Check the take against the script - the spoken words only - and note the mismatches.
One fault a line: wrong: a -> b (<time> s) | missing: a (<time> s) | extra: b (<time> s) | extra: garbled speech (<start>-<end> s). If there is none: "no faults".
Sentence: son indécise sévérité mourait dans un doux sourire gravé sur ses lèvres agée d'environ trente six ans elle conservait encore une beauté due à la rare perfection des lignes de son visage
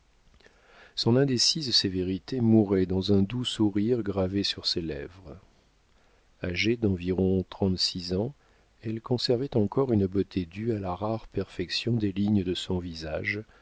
no faults